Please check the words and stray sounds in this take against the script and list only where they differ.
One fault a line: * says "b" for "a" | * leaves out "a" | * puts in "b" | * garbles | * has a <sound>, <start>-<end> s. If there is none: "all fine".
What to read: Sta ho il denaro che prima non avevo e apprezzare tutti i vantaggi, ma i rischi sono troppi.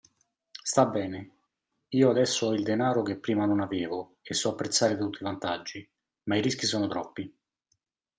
* puts in "bene io adesso"
* puts in "so"